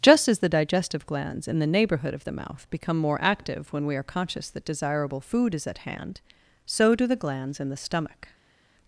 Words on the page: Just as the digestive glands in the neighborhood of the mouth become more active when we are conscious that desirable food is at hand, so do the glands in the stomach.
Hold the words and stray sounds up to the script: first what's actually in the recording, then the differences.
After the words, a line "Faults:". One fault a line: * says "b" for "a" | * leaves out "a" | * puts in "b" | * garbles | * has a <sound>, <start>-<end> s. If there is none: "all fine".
Just as the digestive glands in the neighborhood of the mouth become more active when we are conscious that desirable food is at hand, so do the glands in the stomach.
Faults:
all fine